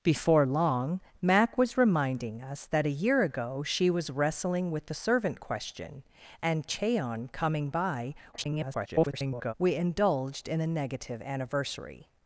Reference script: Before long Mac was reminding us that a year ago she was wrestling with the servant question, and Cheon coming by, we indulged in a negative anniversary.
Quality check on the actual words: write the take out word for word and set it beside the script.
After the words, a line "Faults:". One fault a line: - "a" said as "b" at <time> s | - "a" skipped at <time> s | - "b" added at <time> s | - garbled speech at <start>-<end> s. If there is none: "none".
Before long Mac was reminding us that a year ago she was wrestling with the servant question, and Cheon coming by, [garbled] we indulged in a negative anniversary.
Faults:
- garbled speech at 8.3-9.5 s